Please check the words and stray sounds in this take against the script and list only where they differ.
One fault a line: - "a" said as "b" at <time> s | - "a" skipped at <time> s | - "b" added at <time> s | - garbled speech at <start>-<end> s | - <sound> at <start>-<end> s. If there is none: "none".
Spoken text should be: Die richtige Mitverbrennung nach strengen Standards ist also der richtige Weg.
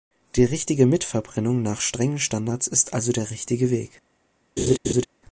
- laugh at 4.6-5.1 s